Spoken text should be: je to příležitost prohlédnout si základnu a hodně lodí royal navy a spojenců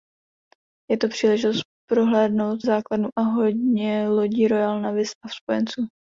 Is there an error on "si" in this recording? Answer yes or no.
yes